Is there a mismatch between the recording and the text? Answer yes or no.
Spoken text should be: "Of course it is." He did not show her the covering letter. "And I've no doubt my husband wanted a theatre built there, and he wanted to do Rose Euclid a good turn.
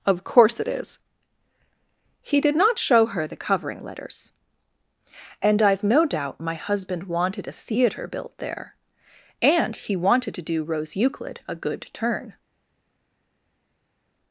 yes